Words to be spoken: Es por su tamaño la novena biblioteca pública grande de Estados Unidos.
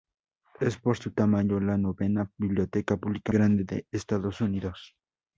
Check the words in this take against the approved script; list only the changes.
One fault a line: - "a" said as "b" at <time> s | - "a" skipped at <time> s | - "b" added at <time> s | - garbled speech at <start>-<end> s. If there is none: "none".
none